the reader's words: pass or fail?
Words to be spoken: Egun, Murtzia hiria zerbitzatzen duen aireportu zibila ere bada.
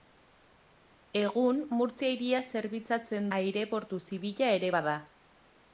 fail